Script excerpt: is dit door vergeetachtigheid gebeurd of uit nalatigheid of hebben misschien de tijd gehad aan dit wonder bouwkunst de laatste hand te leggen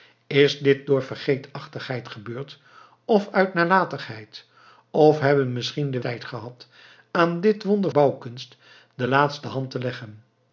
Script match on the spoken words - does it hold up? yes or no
yes